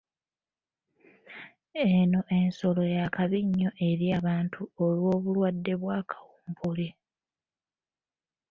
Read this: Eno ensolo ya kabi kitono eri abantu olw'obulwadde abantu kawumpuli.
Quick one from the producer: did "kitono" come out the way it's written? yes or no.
no